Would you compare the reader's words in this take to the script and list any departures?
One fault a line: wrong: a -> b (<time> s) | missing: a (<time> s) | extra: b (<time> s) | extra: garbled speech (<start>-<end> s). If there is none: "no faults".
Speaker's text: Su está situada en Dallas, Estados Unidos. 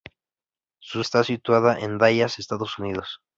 no faults